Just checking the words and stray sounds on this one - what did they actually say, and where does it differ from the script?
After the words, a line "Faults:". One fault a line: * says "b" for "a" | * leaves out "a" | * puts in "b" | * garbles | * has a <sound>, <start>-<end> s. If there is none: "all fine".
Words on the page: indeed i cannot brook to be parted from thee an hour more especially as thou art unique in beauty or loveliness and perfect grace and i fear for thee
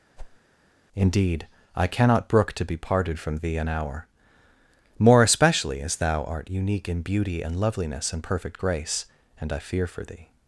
indeed i cannot brook to be parted from thee an hour more especially as thou art unique in beauty and loveliness and perfect grace and i fear for thee
Faults:
* has a whoosh, 0.2-0.4 s
* says "and" for "or"